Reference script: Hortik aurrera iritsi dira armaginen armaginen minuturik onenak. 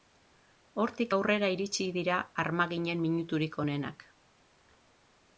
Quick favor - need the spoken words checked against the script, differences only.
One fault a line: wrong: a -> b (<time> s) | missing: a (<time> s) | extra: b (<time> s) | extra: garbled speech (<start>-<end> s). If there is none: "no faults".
missing: armaginen (3.0 s)